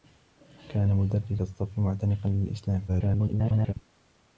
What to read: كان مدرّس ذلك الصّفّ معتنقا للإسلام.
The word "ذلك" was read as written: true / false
false